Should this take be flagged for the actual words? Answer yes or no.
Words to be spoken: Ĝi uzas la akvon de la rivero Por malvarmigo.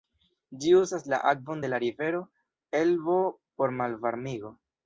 yes